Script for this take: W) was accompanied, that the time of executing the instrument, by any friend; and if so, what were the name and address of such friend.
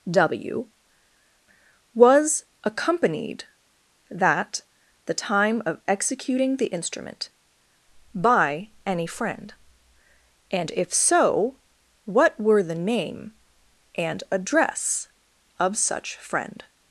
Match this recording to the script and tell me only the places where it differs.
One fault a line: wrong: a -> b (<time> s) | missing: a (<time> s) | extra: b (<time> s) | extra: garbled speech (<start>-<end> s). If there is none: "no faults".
no faults